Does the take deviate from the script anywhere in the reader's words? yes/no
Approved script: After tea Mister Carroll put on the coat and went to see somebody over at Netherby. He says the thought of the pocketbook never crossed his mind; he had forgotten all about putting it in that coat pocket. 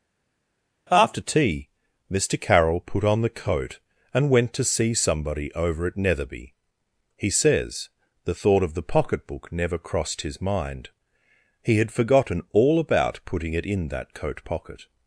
no